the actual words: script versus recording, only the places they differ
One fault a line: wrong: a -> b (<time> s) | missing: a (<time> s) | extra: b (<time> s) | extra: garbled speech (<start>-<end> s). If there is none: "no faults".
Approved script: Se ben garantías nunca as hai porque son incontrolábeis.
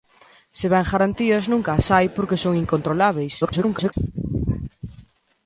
extra: garbled speech (3.4-3.9 s)